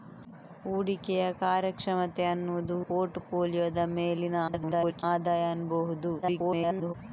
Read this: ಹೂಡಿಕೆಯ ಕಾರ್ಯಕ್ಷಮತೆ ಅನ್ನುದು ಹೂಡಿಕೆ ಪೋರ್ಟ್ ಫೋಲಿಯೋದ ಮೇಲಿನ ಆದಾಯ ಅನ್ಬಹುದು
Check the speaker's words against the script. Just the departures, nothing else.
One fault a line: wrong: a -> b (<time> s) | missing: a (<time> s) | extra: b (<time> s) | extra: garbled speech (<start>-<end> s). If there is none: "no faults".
missing: ಹೂಡಿಕೆ (2.8 s)
extra: garbled speech (4.5-5.0 s)
extra: garbled speech (6.2-6.9 s)